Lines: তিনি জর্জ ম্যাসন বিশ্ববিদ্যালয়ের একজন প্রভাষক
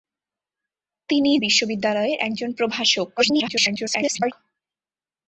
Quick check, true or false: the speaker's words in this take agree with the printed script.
false